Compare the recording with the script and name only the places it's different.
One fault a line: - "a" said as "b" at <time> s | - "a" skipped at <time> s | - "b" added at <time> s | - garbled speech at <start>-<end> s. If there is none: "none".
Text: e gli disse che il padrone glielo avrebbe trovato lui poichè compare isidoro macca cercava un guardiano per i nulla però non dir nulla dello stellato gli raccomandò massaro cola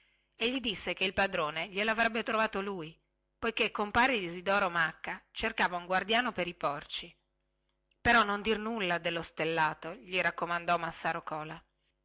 - "nulla" said as "porci" at 6.5 s